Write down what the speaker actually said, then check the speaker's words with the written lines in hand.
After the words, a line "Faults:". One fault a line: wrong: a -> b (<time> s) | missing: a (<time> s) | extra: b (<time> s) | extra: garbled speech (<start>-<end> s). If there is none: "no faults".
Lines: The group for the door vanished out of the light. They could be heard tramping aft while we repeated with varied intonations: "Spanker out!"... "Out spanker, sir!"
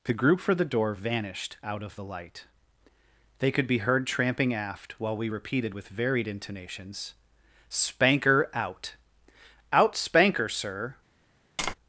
The group for the door vanished out of the light. They could be heard tramping aft while we repeated with varied intonations: "Spanker out!"... "Out spanker, sir!"
Faults:
no faults